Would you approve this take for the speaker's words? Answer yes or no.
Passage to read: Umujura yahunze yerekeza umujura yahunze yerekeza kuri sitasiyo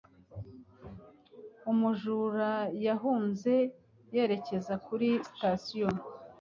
no